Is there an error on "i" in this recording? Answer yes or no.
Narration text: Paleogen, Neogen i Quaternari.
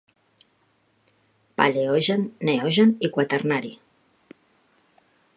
no